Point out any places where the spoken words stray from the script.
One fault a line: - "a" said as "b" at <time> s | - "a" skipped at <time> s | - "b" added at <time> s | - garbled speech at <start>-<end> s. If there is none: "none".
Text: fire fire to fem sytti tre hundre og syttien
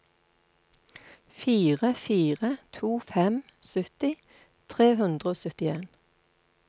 none